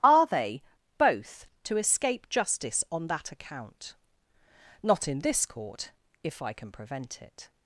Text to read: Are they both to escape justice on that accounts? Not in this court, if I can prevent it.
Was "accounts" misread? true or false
true